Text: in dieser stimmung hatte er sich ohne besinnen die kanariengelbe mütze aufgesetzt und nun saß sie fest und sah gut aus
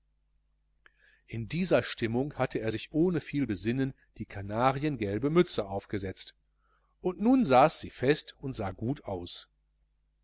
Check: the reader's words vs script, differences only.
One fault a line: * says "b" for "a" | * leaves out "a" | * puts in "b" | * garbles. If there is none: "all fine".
* puts in "viel"